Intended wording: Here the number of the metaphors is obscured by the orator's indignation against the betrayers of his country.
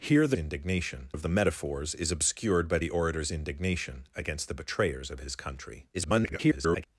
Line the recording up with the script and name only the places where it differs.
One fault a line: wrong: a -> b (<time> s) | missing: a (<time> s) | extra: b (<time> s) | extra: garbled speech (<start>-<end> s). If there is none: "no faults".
wrong: number -> indignation (0.3 s)
extra: garbled speech (5.9-6.9 s)